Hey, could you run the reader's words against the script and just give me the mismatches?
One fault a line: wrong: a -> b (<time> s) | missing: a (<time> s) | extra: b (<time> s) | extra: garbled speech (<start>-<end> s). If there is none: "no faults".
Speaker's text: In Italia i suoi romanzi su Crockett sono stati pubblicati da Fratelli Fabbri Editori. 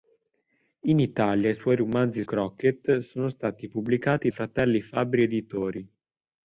missing: su (2.2 s)
missing: da (4.3 s)